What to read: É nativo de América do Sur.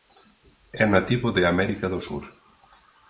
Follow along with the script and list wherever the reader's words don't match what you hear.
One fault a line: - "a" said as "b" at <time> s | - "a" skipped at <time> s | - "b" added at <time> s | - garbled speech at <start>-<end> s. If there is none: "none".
none